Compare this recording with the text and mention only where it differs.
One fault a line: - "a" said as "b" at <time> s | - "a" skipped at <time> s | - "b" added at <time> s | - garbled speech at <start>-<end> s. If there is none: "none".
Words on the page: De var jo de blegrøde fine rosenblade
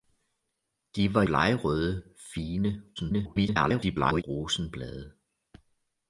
- "jo de" skipped at 1.2 s
- garbled speech at 3.0-4.2 s